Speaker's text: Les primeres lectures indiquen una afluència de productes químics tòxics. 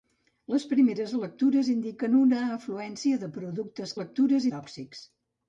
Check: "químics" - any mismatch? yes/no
yes